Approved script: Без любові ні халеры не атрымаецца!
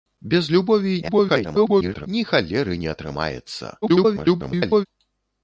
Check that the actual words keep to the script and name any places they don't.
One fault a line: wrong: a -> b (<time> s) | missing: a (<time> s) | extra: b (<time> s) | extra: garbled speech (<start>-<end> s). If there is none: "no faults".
extra: garbled speech (1.0-2.1 s)
extra: garbled speech (3.8-4.9 s)